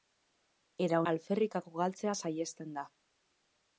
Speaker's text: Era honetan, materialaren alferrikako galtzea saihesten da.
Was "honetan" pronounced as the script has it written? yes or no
no